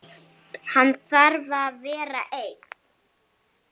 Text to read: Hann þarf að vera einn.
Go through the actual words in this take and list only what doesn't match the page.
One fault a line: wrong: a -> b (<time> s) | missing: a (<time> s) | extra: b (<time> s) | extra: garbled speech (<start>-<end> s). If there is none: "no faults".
no faults